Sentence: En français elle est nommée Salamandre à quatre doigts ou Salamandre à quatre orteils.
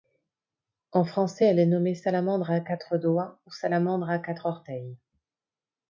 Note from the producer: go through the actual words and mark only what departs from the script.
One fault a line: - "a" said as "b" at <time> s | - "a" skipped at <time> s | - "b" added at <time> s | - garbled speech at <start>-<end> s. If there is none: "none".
none